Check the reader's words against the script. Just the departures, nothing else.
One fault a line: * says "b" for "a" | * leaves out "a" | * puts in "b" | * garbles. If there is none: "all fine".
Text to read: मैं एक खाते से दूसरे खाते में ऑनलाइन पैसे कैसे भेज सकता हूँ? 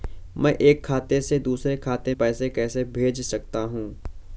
* leaves out "में ऑनलाइन"